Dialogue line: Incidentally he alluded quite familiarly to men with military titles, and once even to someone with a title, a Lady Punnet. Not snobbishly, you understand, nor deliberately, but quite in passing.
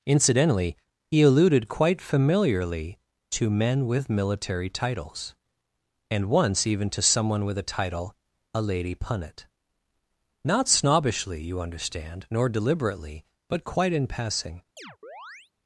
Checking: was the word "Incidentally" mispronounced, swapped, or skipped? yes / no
no